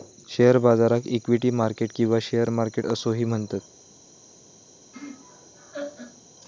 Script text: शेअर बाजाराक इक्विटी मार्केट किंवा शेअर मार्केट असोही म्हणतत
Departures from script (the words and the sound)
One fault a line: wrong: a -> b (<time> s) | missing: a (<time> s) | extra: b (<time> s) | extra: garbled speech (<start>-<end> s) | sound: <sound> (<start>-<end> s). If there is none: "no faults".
sound: laugh (4.9-6.2 s)